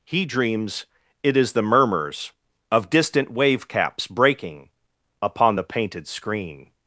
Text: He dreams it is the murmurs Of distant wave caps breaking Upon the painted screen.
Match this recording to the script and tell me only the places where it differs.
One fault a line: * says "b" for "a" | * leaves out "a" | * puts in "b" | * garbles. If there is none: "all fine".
all fine